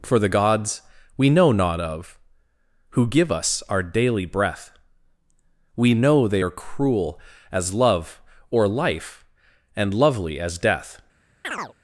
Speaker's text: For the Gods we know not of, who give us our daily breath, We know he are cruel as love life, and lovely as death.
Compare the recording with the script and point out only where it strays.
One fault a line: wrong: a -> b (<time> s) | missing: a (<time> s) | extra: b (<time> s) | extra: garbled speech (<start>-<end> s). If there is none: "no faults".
wrong: he -> they (6.3 s)
extra: or (8.5 s)